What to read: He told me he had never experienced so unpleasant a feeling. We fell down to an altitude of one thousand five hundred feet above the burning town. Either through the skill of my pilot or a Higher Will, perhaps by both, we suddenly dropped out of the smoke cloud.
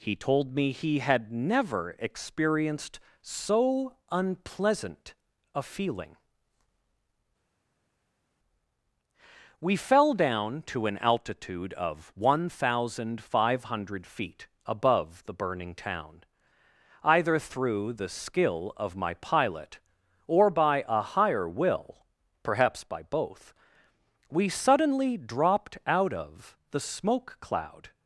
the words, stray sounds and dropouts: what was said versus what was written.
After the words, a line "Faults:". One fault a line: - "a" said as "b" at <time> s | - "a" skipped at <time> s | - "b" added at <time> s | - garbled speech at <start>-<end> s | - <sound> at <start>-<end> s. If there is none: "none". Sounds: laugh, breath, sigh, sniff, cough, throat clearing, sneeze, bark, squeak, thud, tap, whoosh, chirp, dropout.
He told me he had never experienced so unpleasant a feeling. We fell down to an altitude of one thousand five hundred feet above the burning town. Either through the skill of my pilot or by a Higher Will, perhaps by both, we suddenly dropped out of the smoke cloud.
Faults:
- "by" added at 20.5 s